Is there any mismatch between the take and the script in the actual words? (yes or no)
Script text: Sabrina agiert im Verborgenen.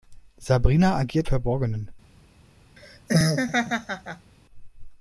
yes